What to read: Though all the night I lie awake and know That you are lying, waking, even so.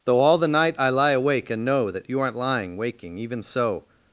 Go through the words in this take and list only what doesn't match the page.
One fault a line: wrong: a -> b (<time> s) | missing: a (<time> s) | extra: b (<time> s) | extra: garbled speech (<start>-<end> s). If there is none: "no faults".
wrong: are -> aren't (2.2 s)